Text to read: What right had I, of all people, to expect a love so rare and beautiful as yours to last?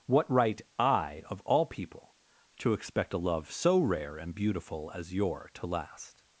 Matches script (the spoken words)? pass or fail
fail